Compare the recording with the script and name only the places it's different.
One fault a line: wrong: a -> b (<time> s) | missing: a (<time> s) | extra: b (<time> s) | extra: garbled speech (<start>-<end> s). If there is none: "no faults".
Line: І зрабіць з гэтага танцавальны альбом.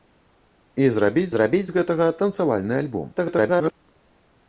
extra: зрабіць (1.3 s)
extra: garbled speech (3.2-3.7 s)